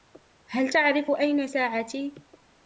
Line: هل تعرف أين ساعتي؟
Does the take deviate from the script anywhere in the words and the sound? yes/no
no